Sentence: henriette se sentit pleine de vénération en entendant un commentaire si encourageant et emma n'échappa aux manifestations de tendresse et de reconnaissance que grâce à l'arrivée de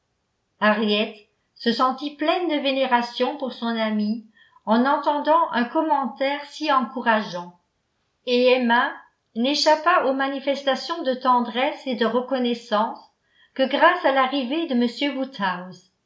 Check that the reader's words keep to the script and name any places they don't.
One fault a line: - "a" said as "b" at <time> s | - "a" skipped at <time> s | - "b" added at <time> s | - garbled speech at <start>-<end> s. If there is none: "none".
- "pour son amie" added at 3.4 s